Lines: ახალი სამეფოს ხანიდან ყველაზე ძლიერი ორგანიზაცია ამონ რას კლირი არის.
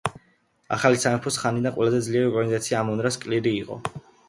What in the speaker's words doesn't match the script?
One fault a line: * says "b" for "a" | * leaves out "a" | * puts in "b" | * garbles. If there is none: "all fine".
* says "იყო" for "არის"